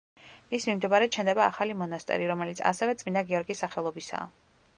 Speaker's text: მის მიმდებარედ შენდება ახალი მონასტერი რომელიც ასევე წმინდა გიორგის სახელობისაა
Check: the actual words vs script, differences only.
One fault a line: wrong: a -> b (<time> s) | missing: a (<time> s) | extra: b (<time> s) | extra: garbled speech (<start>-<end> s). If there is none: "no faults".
no faults